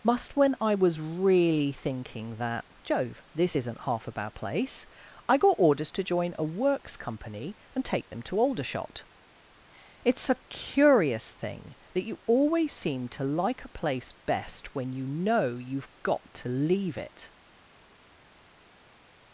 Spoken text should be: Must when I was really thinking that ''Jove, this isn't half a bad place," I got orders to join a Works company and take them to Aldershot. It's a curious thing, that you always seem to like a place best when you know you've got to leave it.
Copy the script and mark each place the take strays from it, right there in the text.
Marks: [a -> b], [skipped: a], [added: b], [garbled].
Must when I was really thinking that ''Jove, this isn't half a bad place," I got orders to join a Works company and take them to Aldershot. It's a curious thing, that you always seem to like a place best when you know you've got to leave it.